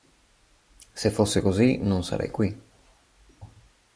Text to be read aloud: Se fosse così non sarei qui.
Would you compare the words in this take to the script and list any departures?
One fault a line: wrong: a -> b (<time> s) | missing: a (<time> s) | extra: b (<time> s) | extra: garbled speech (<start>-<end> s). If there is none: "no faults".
no faults